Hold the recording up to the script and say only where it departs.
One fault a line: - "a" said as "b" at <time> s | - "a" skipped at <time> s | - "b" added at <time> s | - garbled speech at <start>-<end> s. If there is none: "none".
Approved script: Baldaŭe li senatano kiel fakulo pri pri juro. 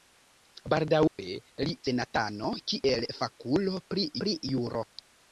none